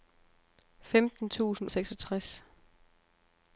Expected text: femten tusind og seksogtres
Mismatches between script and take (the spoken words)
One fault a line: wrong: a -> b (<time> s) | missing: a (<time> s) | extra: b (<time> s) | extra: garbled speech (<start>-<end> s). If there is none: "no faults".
no faults